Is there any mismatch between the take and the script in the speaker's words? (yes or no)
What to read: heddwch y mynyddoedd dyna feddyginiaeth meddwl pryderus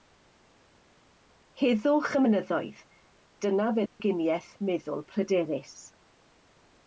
no